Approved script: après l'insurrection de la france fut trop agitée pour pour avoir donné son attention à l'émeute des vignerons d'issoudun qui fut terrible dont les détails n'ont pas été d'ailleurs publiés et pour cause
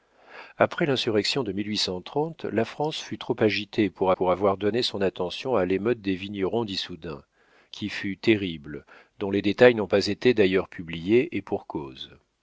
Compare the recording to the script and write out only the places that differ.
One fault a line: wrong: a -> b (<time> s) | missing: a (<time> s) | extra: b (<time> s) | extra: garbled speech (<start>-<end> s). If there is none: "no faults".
no faults